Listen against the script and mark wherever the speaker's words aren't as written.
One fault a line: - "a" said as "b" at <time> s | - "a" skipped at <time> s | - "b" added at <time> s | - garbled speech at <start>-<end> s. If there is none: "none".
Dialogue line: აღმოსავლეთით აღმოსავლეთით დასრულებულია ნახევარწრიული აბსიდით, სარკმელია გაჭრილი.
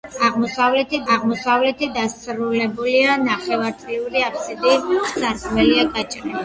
none